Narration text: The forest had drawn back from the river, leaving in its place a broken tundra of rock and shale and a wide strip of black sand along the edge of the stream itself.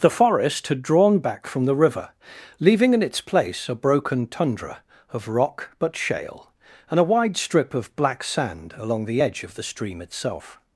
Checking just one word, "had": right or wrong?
right